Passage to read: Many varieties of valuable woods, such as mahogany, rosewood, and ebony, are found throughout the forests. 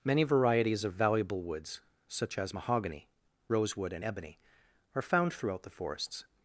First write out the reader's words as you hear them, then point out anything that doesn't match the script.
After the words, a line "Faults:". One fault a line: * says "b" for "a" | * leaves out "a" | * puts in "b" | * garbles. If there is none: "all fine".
Many varieties of valuable woods, such as mahogany, rosewood, and ebony, are found throughout the forests.
Faults:
all fine